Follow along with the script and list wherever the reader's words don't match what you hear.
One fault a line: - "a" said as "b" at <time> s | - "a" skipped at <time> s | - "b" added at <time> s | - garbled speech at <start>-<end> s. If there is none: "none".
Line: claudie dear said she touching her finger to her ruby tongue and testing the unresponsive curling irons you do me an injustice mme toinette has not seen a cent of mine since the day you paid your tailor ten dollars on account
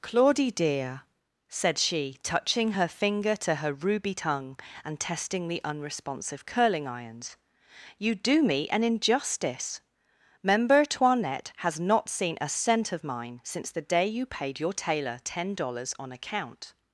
- "mme" said as "member" at 10.4 s